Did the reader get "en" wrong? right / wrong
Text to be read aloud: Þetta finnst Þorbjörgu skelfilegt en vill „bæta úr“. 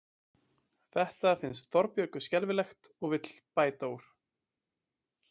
wrong